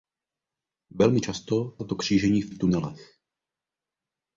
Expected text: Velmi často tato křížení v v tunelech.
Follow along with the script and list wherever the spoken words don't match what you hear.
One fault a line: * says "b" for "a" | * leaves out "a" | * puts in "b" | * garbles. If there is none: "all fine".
all fine